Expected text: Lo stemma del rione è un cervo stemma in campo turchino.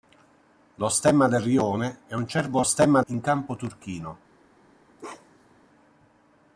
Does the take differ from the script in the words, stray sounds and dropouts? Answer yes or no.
yes